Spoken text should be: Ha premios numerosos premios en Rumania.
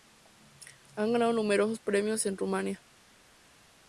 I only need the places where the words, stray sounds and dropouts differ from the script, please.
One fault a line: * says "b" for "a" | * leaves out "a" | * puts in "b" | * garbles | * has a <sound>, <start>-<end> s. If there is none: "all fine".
* says "ganado" for "premios"